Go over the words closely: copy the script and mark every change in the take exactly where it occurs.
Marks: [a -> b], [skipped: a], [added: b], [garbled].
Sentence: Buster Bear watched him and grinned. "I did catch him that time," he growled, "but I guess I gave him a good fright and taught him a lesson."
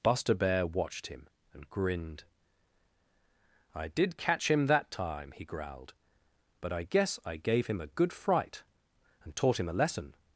Buster Bear watched him and grinned. "I did catch him that time," he growled, "but I guess I gave him a good fright and taught him a lesson."